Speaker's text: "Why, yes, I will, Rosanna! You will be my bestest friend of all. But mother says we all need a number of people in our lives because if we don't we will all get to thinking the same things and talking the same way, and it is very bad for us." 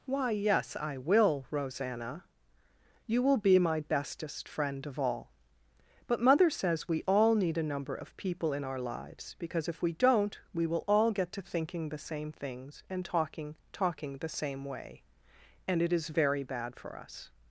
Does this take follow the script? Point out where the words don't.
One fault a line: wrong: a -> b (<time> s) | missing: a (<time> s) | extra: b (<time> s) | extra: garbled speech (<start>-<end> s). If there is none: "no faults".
extra: talking (13.7 s)